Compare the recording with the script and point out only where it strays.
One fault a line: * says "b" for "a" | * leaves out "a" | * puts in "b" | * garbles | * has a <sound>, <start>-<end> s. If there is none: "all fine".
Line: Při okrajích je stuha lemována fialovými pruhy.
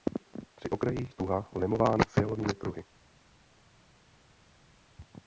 * leaves out "je"